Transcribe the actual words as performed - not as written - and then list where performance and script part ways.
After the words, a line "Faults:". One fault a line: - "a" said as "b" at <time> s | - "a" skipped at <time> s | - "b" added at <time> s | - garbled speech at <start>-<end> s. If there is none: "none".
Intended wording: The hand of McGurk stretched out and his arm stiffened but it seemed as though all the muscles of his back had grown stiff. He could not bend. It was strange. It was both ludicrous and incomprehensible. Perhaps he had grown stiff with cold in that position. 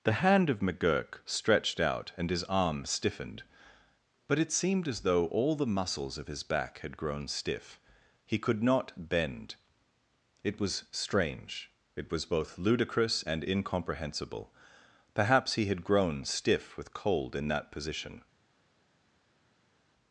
The hand of McGurk stretched out and his arm stiffened but it seemed as though all the muscles of his back had grown stiff. He could not bend. It was strange. It was both ludicrous and incomprehensible. Perhaps he had grown stiff with cold in that position.
Faults:
none